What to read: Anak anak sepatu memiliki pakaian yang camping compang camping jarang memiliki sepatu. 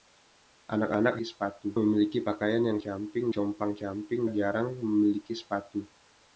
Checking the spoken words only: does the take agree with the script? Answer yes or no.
yes